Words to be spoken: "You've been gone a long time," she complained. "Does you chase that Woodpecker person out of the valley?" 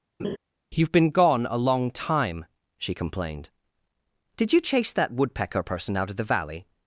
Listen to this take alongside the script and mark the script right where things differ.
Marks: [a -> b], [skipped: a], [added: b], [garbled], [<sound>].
[laugh] "You've been gone a long time," she complained. ["Does -> Did] you chase that Woodpecker person out of the valley?"